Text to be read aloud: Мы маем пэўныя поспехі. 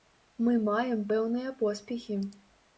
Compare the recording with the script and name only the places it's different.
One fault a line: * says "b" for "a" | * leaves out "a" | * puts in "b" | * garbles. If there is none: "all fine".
all fine